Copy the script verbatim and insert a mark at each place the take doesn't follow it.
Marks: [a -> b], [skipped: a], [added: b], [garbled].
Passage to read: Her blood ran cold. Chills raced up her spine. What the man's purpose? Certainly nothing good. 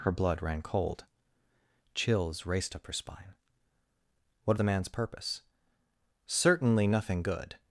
Her blood ran cold. Chills raced up her spine. What the man's purpose? Certainly nothing good.